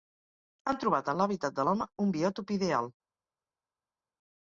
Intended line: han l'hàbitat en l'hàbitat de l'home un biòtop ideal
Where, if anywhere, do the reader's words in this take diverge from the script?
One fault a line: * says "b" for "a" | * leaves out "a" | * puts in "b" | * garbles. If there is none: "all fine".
* says "trobat" for "l'hàbitat"